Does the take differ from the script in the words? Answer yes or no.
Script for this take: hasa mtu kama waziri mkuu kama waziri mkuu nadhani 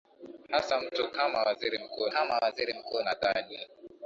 no